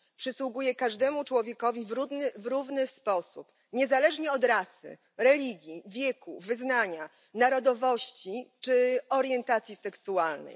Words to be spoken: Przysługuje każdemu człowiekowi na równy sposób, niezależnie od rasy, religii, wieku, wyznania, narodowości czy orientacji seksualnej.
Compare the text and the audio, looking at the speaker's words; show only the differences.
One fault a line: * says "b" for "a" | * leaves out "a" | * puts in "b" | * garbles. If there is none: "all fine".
* says "w" for "na"